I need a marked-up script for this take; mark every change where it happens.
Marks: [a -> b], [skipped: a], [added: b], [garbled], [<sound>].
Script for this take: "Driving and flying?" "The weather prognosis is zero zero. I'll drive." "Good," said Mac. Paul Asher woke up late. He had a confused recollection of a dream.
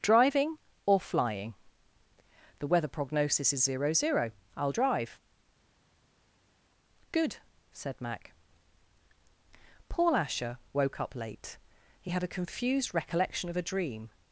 "Driving [and -> or] flying?" "The weather prognosis is zero zero. I'll drive." "Good," said Mac. Paul Asher woke up late. He had a confused recollection of a dream.